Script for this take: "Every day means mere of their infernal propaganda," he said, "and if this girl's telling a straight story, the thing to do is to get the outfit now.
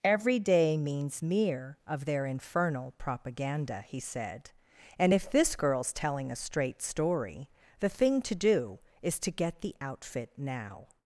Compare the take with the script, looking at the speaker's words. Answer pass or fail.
pass